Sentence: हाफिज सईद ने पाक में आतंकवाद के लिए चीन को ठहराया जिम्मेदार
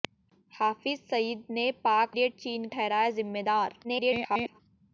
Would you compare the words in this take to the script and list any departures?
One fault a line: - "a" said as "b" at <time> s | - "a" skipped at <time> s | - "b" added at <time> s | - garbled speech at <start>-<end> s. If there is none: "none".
- "में आतंकवाद के" skipped at 2.2 s
- "को" skipped at 2.7 s
- garbled speech at 3.8-4.6 s